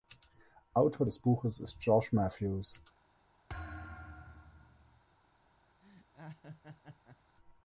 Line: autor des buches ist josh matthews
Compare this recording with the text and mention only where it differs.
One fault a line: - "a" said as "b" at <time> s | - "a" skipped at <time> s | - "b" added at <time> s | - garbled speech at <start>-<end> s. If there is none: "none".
none